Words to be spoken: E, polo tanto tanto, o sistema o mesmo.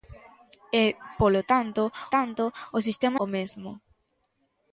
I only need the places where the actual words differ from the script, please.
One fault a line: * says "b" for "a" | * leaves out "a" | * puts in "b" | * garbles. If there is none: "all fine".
all fine